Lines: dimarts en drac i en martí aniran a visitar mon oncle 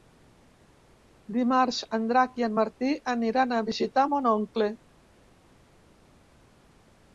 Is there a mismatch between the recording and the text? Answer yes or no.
no